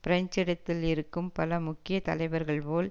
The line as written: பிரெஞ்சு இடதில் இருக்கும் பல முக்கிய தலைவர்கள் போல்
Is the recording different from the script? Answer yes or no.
no